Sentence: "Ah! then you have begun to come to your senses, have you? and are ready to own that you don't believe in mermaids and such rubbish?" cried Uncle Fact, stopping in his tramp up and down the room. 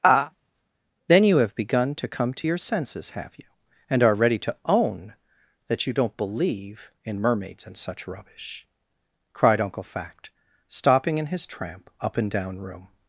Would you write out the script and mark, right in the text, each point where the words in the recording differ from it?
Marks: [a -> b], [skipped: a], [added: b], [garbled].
"Ah! then you have begun to come to your senses, have you? and are ready to own that you don't believe in mermaids and such rubbish?" cried Uncle Fact, stopping in his tramp up and down [skipped: the] room.